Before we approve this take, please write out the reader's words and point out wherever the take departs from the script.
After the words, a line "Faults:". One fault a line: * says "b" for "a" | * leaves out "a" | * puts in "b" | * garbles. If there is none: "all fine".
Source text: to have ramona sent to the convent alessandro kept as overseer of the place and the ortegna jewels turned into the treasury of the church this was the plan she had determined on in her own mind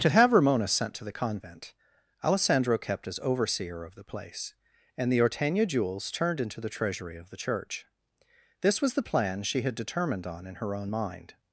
to have ramona sent to the convent alessandro kept as overseer of the place and the ortegna jewels turned into the treasury of the church this was the plan she had determined on in her own mind
Faults:
all fine